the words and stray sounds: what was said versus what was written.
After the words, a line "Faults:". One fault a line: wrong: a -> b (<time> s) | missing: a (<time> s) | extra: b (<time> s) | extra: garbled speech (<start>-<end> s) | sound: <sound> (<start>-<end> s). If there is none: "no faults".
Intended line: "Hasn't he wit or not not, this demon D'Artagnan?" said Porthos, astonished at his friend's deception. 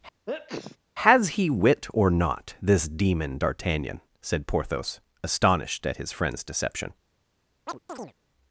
"Has he wit or not, this demon D'Artagnan?" said Porthos, astonished at his friend's deception.
Faults:
sound: sneeze (0.3-0.8 s)
wrong: Hasn't -> Has (1.0 s)
missing: not (2.5 s)
sound: chirp (7.7-8.1 s)